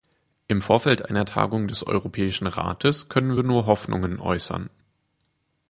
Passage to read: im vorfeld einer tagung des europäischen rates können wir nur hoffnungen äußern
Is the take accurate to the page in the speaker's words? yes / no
yes